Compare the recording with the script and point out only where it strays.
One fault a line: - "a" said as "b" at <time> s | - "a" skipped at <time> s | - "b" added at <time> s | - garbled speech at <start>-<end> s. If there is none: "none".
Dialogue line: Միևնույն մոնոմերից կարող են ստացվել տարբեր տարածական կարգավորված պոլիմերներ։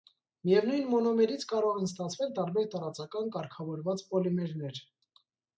none